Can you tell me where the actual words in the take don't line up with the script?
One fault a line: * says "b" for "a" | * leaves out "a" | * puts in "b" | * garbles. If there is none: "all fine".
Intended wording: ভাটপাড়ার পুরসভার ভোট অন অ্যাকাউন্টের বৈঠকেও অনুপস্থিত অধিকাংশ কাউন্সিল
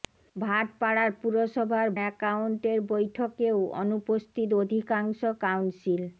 * leaves out "ভোট অন"